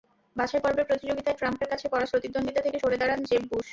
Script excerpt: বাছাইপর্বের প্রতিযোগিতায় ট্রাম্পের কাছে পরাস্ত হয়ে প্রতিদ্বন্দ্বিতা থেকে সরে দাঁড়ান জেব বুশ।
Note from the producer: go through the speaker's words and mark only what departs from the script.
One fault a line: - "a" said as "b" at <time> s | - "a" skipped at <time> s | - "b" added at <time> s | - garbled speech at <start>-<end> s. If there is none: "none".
- "হয়ে" skipped at 2.1 s